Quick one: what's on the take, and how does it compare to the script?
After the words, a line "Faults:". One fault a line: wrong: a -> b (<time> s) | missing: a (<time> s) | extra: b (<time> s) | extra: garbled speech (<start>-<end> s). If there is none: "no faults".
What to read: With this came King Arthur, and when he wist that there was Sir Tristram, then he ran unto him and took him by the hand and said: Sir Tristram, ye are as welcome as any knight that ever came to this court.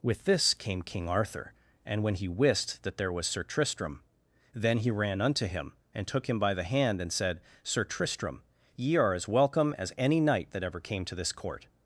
With this came King Arthur, and when he wist that there was Sir Tristram, then he ran unto him and took him by the hand and said: Sir Tristram, ye are as welcome as any knight that ever came to this court.
Faults:
no faults